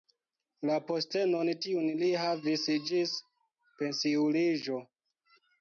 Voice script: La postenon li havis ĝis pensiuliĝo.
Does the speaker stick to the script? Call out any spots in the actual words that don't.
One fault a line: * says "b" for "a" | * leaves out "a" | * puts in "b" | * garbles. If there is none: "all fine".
* puts in "tiun"